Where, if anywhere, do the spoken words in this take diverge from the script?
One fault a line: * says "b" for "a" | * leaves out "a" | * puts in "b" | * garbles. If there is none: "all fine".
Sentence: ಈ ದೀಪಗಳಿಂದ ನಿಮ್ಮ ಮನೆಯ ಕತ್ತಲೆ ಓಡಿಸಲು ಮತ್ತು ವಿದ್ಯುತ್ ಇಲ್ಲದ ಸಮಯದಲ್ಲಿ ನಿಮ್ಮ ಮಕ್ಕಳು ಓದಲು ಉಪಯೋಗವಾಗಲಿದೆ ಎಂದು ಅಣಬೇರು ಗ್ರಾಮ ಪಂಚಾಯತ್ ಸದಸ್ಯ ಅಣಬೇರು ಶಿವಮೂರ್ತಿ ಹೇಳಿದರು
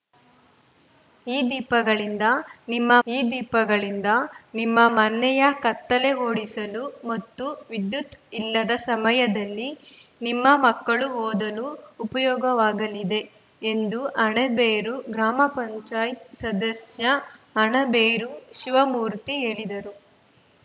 * puts in "ಈ ದೀಪಗಳಿಂದ ನಿಮ್ಮ"